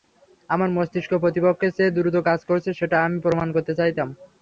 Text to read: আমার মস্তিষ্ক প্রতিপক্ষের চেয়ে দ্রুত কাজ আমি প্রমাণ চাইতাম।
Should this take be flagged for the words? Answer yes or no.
yes